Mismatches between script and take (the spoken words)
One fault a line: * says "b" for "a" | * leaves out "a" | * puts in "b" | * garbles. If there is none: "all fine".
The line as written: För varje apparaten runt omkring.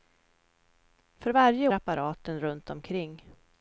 all fine